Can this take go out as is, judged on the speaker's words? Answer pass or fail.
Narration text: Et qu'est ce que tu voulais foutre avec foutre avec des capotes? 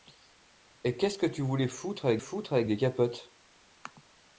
pass